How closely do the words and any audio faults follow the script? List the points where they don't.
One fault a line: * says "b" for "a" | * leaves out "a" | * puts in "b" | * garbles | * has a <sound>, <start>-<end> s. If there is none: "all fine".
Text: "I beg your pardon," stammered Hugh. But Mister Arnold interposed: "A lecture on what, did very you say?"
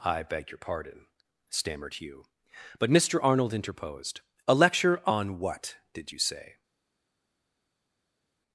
* leaves out "very"